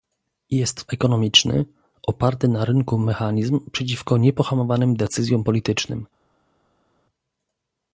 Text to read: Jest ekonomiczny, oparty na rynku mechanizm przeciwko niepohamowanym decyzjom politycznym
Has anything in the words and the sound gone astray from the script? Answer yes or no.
no